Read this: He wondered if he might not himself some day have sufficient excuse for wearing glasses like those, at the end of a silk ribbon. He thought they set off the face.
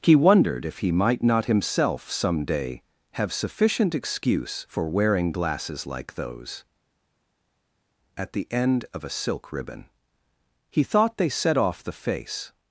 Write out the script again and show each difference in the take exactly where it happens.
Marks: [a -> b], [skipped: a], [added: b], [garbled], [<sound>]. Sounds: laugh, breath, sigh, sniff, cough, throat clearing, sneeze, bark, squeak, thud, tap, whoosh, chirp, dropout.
He wondered if he might not himself some day have sufficient excuse for wearing glasses like those, at the end of a silk ribbon. He thought they set off the face.